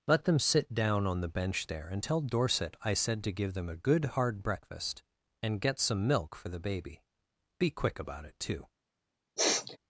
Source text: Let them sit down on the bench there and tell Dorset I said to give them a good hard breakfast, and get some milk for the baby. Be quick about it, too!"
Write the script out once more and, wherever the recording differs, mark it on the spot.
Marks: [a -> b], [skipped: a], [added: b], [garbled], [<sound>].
Let them sit down on the bench there and tell Dorset I said to give them a good hard breakfast, and get some milk for the baby. Be quick about it, too!" [sneeze]